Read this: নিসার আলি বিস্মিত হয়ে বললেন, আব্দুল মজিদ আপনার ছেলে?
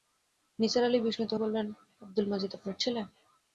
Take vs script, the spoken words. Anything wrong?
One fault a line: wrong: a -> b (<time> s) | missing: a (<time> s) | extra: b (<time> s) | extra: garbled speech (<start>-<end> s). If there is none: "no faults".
missing: হয়ে (1.3 s)